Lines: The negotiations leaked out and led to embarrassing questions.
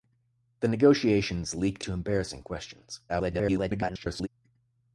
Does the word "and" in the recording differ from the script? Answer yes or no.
yes